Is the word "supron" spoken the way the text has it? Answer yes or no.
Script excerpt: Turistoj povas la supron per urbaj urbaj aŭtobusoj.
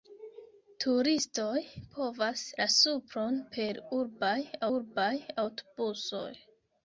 yes